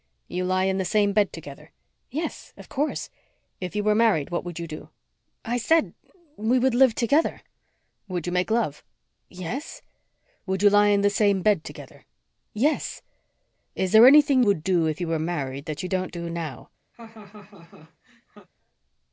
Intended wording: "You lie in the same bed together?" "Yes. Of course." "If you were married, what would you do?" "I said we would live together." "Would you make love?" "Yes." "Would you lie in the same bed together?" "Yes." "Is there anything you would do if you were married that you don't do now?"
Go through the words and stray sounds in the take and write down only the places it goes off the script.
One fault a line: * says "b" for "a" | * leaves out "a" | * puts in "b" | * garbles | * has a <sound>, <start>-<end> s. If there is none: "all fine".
* leaves out "you"
* has a laugh, 16.9-18.5 s